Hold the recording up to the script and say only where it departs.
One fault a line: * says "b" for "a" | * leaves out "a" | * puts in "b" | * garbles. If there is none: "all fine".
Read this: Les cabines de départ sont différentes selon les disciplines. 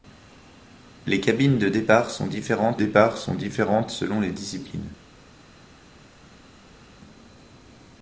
* puts in "départ sont différentes"